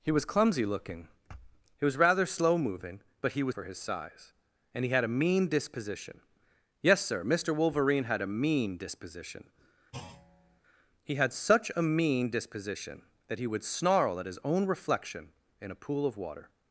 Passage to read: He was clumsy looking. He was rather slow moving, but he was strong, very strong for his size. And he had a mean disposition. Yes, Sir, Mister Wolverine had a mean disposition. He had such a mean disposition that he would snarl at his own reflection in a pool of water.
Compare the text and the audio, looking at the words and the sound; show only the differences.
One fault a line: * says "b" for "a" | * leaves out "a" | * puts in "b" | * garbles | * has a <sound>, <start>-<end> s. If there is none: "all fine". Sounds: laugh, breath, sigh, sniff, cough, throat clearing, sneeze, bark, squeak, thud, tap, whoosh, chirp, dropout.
* leaves out "strong very strong"
* has a thud, 9.9-10.6 s